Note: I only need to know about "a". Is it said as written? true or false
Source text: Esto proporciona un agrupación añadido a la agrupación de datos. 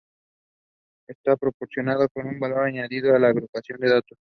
true